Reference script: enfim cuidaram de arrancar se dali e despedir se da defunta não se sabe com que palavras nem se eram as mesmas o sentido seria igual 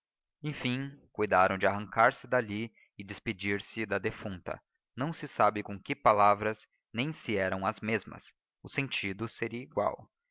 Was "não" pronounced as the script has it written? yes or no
yes